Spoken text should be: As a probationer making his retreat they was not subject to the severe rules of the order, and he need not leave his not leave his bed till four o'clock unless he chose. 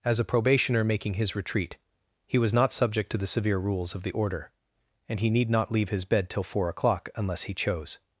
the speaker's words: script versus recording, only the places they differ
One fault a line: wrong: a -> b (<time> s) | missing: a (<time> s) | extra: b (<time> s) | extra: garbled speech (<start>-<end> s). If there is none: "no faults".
wrong: they -> he (2.2 s)
missing: not leave his (6.0 s)